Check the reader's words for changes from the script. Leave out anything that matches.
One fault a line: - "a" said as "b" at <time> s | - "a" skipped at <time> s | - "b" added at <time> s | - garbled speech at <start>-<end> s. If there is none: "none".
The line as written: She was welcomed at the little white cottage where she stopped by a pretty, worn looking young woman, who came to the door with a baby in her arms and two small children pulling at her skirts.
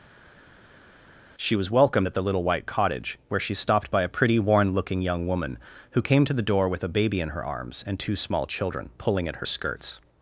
none